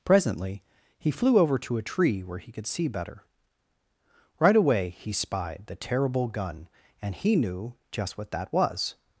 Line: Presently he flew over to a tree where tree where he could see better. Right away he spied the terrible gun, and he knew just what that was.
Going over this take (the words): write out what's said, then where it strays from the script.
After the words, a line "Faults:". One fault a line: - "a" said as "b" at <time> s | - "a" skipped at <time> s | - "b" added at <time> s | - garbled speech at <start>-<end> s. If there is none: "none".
Presently he flew over to a tree where he could see better. Right away he spied the terrible gun, and he knew just what that was.
Faults:
- "tree where" skipped at 2.4 s